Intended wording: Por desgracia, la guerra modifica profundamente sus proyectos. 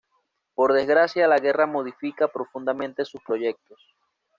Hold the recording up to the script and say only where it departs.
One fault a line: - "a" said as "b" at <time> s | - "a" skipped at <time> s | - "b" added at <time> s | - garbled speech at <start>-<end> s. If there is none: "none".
none